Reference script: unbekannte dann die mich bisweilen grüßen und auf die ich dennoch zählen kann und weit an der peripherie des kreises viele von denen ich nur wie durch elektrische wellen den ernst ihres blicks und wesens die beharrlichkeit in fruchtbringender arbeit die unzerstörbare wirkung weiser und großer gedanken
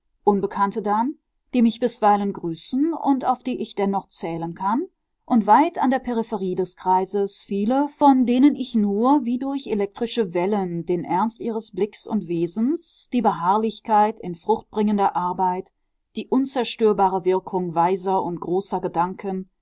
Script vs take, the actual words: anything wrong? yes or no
no